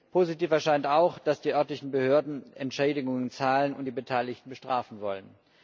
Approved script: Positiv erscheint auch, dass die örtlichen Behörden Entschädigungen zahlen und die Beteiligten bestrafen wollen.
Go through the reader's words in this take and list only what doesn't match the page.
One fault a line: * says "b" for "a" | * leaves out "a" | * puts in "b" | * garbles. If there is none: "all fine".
all fine